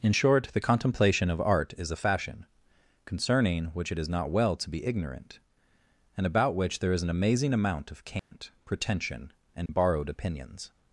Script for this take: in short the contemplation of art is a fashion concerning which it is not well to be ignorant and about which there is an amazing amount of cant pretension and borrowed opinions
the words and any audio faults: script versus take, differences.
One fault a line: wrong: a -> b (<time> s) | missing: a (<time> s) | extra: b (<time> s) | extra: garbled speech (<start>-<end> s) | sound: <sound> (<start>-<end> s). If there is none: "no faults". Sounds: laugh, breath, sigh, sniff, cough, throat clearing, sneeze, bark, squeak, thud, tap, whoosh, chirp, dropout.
sound: dropout (8.2-8.3 s)
sound: dropout (9.7-9.7 s)